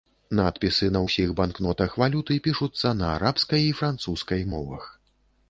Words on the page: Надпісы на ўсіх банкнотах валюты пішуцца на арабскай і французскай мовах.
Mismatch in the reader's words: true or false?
false